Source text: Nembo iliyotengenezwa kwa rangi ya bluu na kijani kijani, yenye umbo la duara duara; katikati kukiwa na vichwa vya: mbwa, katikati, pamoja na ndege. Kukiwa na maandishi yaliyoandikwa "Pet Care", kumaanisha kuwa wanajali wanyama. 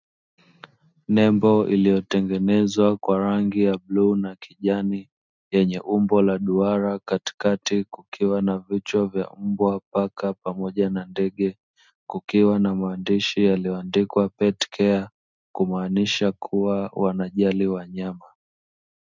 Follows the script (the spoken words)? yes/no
no